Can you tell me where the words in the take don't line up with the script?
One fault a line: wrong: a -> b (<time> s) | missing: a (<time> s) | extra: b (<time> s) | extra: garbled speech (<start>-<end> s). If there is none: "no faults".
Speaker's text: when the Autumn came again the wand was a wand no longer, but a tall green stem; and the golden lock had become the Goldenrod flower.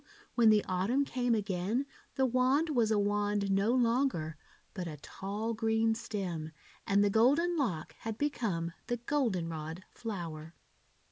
no faults